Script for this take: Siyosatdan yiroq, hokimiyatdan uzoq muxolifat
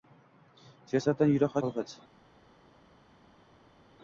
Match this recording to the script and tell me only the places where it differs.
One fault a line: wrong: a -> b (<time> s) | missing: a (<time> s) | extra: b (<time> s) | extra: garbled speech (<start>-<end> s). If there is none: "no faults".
missing: hokimiyatdan uzoq (1.6 s)